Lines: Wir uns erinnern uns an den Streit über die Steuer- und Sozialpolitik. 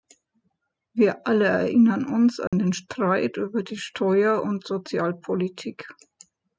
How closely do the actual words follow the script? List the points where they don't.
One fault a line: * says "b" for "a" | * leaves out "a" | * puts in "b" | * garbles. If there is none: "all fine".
* says "alle" for "uns"